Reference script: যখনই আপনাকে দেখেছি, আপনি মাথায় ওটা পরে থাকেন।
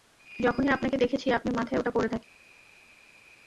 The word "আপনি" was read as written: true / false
true